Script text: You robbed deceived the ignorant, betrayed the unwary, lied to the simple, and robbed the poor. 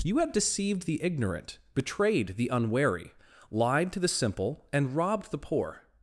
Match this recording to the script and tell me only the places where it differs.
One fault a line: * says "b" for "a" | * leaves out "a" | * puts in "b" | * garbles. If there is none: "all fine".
* says "have" for "robbed"